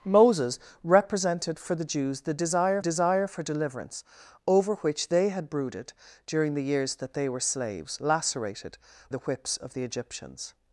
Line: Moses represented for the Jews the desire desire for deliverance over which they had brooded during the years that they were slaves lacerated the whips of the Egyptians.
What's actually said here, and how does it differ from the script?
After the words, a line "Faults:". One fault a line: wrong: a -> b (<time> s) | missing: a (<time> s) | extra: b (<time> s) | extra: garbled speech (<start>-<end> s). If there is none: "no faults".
Moses represented for the Jews the desire desire for deliverance over which they had brooded during the years that they were slaves lacerated the whips of the Egyptians.
Faults:
no faults